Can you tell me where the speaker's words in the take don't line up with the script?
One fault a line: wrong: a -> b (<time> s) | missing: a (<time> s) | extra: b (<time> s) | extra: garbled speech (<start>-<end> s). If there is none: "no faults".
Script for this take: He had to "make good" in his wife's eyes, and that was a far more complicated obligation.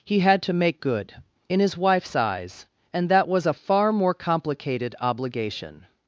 no faults